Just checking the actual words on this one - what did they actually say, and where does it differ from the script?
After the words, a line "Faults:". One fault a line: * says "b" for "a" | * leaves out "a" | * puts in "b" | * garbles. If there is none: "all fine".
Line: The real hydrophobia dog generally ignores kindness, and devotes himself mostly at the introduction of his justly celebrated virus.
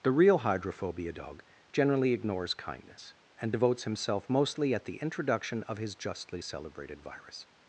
The real hydrophobia dog generally ignores kindness, and devotes himself mostly at the introduction of his justly celebrated virus.
Faults:
all fine